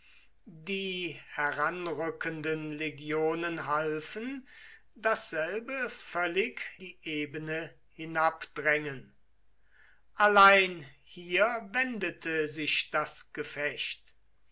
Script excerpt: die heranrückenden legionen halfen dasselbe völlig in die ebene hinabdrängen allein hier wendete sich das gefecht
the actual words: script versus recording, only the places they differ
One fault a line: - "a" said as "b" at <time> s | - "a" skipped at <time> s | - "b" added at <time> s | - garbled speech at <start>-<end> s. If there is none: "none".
- "in" skipped at 6.6 s